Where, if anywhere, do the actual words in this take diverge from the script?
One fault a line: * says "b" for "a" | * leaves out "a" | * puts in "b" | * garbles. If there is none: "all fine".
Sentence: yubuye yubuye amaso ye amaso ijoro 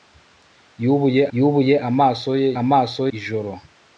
all fine